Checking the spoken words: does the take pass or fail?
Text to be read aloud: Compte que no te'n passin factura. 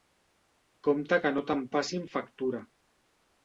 pass